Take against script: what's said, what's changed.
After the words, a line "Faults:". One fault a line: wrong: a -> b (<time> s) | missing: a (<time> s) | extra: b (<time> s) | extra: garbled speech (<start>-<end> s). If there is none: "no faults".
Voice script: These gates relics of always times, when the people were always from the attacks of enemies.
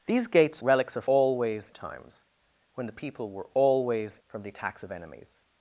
These gates relics of always times, when the people were always from the attacks of enemies.
Faults:
no faults